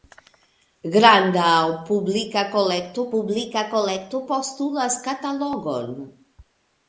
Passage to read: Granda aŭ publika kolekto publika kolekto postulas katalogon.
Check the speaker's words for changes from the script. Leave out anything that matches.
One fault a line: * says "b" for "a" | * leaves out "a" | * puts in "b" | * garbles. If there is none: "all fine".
all fine